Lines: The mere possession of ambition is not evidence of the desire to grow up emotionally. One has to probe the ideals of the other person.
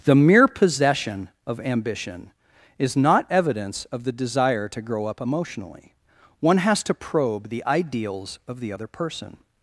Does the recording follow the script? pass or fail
pass